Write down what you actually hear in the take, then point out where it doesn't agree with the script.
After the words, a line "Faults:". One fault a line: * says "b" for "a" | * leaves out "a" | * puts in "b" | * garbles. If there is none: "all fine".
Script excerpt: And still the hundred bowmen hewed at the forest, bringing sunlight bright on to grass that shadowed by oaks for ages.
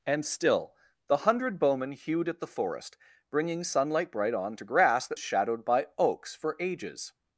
And still the hundred bowmen hewed at the forest, bringing sunlight bright on to grass that shadowed by oaks for ages.
Faults:
all fine